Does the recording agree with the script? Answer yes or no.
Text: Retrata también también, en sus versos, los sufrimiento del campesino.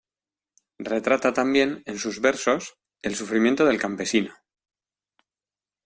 no